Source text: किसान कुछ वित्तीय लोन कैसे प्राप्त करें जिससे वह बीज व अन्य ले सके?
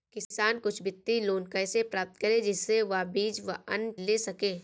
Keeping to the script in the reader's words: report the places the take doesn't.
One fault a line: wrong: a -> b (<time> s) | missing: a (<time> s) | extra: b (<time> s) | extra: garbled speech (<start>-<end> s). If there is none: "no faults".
no faults